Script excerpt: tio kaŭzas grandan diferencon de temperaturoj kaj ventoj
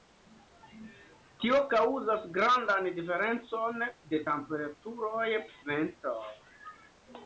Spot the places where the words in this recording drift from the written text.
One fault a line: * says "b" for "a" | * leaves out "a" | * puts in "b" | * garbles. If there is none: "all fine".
* leaves out "kaj"